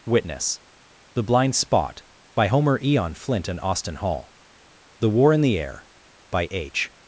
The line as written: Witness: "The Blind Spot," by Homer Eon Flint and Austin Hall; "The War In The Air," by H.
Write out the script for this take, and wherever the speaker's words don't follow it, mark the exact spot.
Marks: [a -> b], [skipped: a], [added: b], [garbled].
Witness: "The Blind Spot," by Homer Eon Flint and Austin Hall; "The War In The Air," by H.